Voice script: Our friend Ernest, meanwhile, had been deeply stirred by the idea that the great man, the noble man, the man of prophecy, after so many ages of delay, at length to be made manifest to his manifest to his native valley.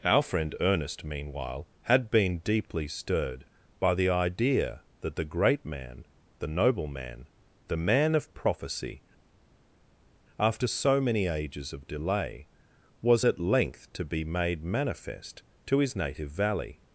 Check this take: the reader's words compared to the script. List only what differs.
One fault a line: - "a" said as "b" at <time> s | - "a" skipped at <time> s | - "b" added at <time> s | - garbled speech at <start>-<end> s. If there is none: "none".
- "was" added at 13.0 s
- "manifest to his" skipped at 16.0 s